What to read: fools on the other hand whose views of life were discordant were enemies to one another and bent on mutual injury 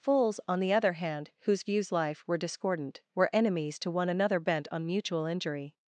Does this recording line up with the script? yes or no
no